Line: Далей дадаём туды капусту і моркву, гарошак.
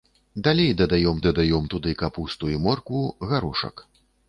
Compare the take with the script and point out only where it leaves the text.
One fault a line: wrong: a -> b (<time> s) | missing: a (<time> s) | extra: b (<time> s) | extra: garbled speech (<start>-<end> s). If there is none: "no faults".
extra: дадаём (1.2 s)